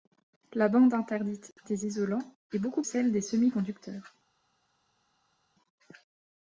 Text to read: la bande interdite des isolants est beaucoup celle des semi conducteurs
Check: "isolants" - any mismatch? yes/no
no